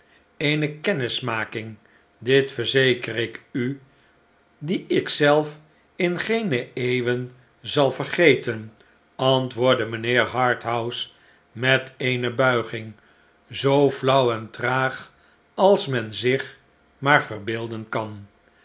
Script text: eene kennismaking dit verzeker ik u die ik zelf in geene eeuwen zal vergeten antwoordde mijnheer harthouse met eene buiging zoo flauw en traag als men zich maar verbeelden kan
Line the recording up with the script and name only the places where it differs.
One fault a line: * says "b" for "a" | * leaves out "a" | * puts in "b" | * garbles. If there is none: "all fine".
all fine